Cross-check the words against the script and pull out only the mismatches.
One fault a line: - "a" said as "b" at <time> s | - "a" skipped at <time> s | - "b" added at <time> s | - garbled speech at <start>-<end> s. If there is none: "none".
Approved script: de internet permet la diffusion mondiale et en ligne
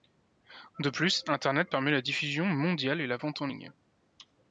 - "plus" added at 0.9 s
- "la vente" added at 3.1 s